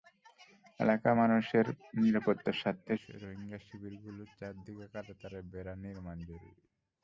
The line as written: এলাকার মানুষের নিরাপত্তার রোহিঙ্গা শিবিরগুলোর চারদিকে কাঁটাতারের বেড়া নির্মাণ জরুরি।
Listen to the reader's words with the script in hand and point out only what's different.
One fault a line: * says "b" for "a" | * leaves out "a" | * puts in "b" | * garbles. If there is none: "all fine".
* puts in "স্বার্থে"